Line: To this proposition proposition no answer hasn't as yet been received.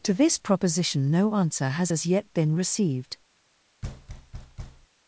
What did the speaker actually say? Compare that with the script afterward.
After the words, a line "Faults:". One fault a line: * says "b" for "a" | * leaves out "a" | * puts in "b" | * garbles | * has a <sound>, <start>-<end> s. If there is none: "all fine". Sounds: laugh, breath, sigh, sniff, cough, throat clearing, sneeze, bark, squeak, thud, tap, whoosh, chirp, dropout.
To this proposition no answer has as yet been received.
Faults:
* leaves out "proposition"
* says "has" for "hasn't"
* has a thud, 3.8-4.9 s